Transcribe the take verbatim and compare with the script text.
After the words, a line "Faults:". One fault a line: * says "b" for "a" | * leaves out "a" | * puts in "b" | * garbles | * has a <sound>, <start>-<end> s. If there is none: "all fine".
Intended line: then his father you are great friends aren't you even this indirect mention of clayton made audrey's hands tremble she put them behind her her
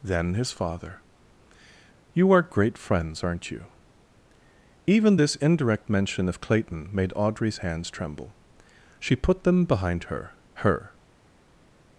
then his father you are great friends aren't you even this indirect mention of clayton made audrey's hands tremble she put them behind her her
Faults:
all fine